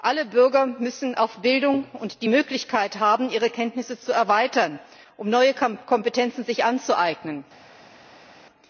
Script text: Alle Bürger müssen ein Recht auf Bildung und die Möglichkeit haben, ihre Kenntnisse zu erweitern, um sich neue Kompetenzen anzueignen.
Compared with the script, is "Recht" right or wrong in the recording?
wrong